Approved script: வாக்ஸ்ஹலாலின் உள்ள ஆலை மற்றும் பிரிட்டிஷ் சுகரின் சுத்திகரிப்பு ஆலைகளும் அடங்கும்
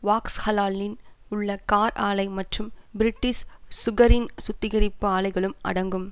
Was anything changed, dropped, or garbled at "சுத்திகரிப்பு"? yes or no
no